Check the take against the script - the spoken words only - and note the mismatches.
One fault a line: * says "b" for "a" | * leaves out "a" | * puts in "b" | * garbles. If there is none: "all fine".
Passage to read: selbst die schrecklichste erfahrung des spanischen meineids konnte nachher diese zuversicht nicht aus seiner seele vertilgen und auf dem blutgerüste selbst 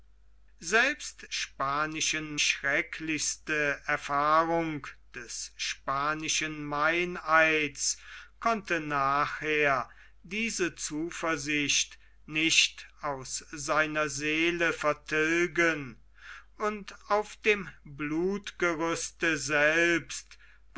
* says "spanischen" for "die"